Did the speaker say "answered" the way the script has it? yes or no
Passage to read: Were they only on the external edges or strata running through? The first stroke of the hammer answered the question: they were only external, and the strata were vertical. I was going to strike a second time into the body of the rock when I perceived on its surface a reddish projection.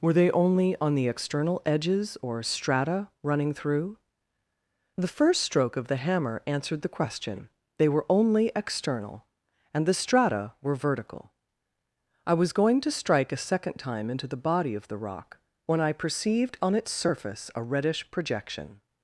yes